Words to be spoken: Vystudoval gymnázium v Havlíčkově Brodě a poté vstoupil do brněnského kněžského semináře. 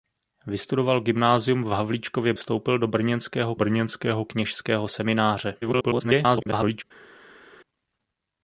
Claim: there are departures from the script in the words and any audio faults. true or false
true